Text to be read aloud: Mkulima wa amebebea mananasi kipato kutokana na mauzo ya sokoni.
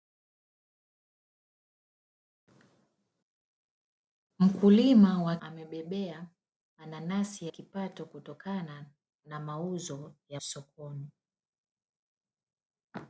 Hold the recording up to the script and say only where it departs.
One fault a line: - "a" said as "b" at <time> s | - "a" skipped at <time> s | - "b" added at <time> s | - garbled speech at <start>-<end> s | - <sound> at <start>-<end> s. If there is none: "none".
none